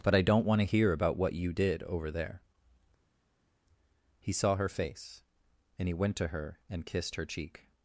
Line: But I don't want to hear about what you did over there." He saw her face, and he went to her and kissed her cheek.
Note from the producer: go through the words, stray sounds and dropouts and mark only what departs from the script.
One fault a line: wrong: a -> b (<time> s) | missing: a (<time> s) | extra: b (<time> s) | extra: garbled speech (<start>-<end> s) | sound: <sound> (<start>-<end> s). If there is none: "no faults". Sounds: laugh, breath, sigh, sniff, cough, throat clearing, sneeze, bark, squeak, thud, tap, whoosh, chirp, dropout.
no faults